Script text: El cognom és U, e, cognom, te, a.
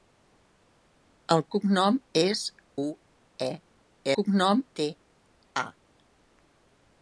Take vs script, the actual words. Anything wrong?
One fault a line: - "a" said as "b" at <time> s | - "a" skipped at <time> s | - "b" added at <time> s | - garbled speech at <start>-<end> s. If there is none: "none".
none